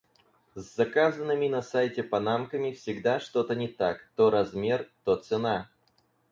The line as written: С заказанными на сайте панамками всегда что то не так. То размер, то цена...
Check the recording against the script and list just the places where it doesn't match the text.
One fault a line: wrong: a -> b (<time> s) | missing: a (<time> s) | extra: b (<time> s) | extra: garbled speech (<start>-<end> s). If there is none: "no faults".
no faults